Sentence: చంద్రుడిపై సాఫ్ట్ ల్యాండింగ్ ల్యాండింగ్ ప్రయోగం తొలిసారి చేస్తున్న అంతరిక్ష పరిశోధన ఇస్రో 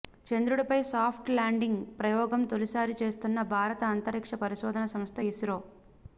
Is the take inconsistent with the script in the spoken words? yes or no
yes